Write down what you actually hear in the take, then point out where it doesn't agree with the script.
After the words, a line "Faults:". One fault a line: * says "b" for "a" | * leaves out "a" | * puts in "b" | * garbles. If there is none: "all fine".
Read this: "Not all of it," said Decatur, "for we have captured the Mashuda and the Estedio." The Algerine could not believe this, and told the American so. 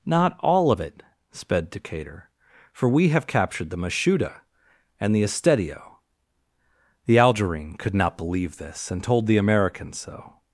"Not all of it," sped Decatur, "for we have captured the Mashuda and the Estedio." The Algerine could not believe this, and told the American so.
Faults:
* says "sped" for "said"